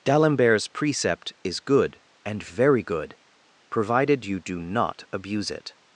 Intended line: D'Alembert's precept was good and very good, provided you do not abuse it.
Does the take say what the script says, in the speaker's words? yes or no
no